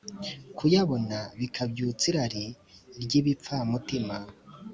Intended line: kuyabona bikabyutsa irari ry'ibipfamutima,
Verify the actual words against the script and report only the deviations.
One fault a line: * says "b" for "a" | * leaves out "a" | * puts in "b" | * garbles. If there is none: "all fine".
all fine